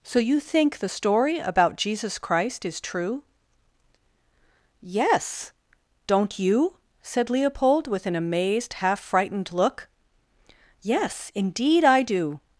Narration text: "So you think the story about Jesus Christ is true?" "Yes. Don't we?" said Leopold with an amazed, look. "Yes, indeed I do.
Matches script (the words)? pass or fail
fail